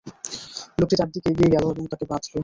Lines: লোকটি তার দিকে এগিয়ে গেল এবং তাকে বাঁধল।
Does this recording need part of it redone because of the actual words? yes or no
no